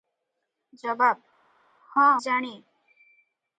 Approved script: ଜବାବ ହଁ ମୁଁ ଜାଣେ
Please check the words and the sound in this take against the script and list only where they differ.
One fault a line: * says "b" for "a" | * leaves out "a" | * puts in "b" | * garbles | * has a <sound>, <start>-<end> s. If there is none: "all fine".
* leaves out "ମୁଁ"